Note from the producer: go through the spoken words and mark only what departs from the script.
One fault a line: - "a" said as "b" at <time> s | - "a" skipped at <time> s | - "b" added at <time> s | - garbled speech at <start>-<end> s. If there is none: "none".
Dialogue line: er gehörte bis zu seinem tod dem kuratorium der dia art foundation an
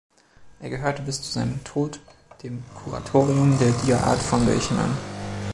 none